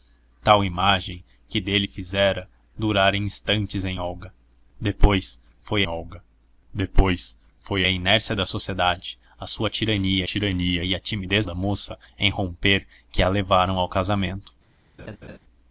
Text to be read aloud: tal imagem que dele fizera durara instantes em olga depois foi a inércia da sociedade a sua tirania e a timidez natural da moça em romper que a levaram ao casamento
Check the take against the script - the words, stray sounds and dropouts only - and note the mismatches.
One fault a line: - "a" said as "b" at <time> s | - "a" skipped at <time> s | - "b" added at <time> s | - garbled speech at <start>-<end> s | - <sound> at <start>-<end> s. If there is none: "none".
- "olga depois foi" added at 5.9 s
- "tirania" added at 10.2 s
- "natural" skipped at 11.5 s
- laugh at 15.0-15.4 s